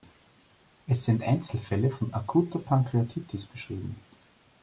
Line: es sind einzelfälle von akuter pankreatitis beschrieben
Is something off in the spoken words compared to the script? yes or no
no